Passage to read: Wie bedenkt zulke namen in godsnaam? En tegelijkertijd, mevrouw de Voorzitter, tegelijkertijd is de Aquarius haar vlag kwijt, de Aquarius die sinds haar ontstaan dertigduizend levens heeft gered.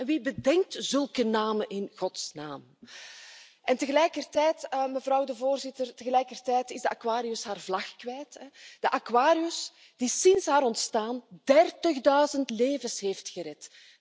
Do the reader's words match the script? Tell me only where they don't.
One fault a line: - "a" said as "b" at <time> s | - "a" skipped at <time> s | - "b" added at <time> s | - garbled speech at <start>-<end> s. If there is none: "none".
none